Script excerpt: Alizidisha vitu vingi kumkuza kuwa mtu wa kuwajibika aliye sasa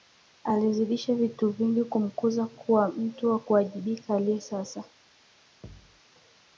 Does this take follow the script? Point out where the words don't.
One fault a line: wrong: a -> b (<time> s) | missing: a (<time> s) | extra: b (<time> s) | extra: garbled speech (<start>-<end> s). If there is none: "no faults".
no faults